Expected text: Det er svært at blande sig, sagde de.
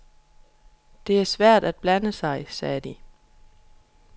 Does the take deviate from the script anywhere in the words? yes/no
no